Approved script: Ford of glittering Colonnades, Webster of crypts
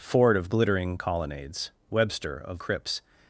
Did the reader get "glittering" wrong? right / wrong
right